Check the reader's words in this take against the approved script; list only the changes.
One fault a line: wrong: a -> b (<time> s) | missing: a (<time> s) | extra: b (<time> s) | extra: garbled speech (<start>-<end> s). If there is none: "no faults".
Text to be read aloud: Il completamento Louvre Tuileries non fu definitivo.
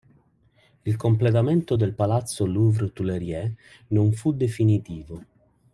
extra: del palazzo (1.7 s)